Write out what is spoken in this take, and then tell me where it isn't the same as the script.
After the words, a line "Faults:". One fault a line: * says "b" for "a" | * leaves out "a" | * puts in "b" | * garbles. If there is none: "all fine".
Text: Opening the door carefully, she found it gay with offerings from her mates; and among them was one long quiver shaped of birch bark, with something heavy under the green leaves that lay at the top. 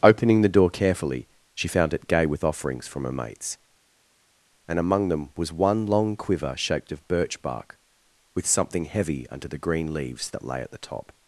Opening the door carefully, she found it gay with offerings from her mates; and among them was one long quiver shaped of birch bark, with something heavy under the green leaves that lay at the top.
Faults:
all fine